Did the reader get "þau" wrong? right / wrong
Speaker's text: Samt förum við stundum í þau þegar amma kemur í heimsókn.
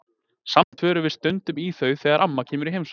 right